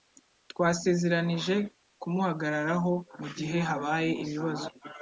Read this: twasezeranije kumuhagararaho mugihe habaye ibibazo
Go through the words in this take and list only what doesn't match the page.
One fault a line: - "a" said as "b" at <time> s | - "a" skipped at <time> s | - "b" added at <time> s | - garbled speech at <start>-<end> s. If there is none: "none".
none